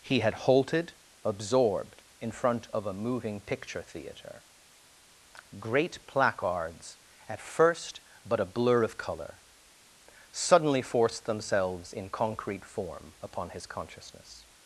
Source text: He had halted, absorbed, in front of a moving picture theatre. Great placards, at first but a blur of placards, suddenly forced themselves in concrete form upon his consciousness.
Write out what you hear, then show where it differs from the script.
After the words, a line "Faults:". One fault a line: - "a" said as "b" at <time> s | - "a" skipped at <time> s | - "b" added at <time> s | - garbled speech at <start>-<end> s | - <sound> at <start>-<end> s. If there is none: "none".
He had halted, absorbed, in front of a moving picture theatre. Great placards, at first but a blur of colour, suddenly forced themselves in concrete form upon his consciousness.
Faults:
- "placards" said as "colour" at 9.0 s